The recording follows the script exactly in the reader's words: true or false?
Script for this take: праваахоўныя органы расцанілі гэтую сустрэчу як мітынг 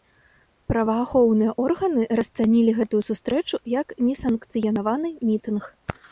false